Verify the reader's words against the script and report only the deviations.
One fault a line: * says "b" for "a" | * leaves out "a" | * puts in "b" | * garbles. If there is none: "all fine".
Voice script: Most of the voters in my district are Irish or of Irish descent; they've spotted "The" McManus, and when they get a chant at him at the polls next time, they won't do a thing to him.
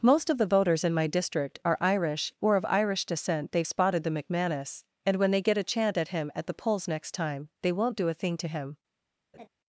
all fine